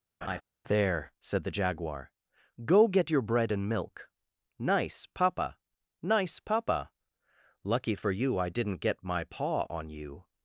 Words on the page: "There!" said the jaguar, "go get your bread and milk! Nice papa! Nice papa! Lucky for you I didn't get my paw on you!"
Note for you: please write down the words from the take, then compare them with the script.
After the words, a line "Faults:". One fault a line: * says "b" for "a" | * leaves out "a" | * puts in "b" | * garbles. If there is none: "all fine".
"There!" said the jaguar, "go get your bread and milk! Nice papa! Nice papa! Lucky for you I didn't get my paw on you!"
Faults:
all fine